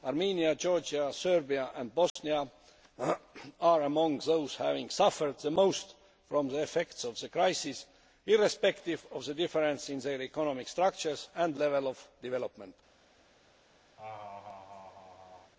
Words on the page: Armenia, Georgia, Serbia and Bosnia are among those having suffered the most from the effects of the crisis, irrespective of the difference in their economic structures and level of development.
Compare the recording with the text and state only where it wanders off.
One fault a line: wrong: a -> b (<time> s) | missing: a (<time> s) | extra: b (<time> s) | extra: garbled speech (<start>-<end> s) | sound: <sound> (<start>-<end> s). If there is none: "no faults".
sound: dropout (2.1-2.2 s)
sound: laugh (14.0-15.5 s)